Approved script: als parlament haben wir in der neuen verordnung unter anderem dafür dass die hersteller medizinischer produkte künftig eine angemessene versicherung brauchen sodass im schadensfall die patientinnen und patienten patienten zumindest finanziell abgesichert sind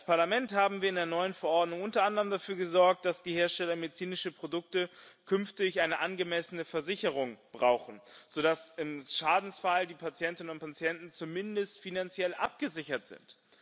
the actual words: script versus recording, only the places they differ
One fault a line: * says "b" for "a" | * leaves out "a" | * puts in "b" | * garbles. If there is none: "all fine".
* puts in "gesorgt"
* leaves out "patienten"